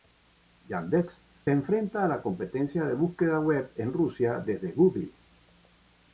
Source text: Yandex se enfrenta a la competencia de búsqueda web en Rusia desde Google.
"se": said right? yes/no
no